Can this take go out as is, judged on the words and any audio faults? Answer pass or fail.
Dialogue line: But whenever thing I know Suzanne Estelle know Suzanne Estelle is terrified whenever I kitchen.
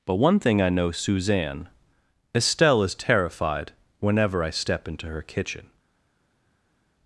fail